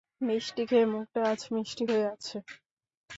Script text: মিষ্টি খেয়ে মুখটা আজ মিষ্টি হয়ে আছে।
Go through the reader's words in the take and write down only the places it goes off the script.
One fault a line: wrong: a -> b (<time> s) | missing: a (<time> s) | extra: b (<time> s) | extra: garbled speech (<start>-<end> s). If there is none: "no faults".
no faults